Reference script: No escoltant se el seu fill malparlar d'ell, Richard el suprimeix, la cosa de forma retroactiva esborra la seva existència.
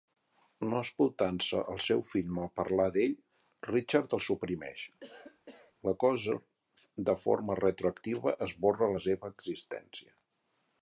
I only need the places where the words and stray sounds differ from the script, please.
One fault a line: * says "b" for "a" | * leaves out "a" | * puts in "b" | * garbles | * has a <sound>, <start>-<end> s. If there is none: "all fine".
* has a cough, 5.0-5.7 s